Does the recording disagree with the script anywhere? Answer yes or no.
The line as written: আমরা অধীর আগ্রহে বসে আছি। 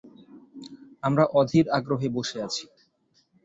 no